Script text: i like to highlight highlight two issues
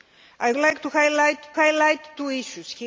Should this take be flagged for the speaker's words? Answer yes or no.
no